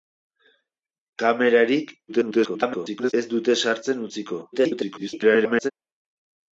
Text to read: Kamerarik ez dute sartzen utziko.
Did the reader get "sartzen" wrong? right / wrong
right